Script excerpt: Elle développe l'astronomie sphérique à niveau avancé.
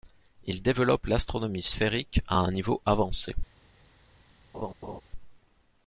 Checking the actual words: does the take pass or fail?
fail